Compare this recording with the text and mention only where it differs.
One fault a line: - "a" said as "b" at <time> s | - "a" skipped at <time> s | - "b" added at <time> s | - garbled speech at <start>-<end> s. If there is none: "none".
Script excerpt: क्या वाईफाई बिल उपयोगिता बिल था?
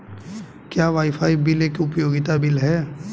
- "एक" added at 1.6 s
- "था" said as "है" at 2.6 s